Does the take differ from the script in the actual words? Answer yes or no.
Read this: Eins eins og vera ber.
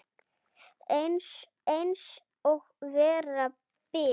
no